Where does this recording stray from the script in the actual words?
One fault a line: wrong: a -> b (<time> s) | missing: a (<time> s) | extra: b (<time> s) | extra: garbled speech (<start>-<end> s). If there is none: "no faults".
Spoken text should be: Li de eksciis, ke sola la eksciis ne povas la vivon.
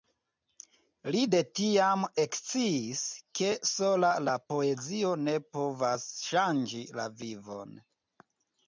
extra: tiam (1.6 s)
wrong: eksciis -> poezio (4.6 s)
extra: ŝanĝi (6.3 s)